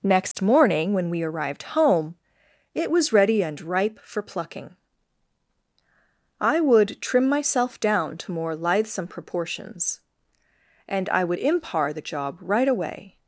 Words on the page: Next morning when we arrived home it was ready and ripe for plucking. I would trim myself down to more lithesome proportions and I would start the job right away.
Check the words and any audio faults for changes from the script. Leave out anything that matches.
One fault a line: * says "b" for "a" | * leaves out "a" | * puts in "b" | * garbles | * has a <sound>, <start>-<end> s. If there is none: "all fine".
* has a dropout, 0.3-0.3 s
* says "impar" for "start"